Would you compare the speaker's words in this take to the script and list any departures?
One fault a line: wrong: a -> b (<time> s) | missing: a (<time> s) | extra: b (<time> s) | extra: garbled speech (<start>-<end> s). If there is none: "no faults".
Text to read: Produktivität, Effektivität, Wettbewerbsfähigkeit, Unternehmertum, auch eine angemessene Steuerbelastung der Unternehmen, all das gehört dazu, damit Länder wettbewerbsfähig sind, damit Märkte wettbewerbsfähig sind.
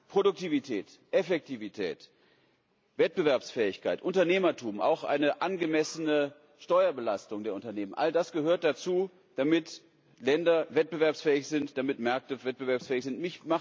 no faults